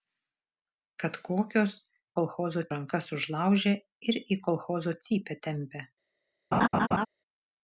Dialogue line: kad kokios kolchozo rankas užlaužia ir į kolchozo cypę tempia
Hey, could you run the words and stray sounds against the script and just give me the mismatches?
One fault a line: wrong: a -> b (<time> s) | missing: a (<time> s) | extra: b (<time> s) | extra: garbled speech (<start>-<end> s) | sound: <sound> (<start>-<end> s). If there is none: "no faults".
sound: laugh (6.5-7.1 s)